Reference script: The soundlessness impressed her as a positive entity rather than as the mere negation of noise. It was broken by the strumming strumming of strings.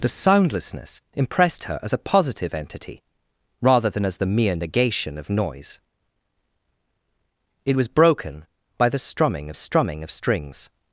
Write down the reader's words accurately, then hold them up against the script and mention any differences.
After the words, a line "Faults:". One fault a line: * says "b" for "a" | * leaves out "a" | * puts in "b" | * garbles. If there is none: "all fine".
The soundlessness impressed her as a positive entity rather than as the mere negation of noise. It was broken by the strumming strumming of strings.
Faults:
all fine